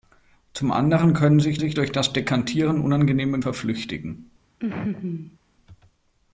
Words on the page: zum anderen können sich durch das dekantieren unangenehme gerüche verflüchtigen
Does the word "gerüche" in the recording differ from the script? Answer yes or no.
yes